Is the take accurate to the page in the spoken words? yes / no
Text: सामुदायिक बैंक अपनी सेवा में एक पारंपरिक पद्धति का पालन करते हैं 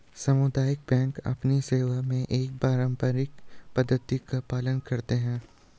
yes